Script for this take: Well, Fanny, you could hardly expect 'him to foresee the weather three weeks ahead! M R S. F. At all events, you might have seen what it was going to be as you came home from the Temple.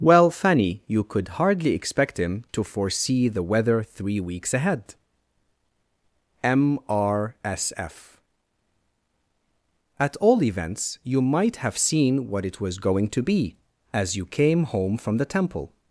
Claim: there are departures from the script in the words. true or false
false